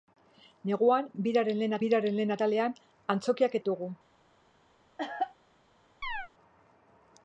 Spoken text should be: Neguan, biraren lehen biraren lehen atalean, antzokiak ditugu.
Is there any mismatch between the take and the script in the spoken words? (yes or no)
no